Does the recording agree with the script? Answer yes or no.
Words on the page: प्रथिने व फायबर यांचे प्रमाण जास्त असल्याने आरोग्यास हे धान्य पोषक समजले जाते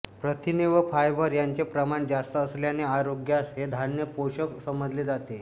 yes